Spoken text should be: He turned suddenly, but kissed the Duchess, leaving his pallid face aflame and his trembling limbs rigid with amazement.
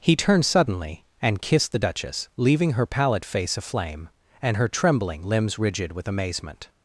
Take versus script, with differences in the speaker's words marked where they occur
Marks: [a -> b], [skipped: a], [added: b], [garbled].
He turned suddenly, [but -> and] kissed the Duchess, leaving [his -> her] pallid face aflame and [his -> her] trembling limbs rigid with amazement.